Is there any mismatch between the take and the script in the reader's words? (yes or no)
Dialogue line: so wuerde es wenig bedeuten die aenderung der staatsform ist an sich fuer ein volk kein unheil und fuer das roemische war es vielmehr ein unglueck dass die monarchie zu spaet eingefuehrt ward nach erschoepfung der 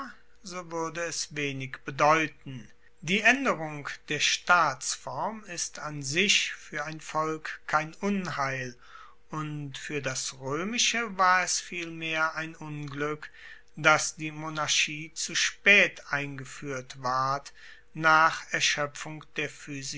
no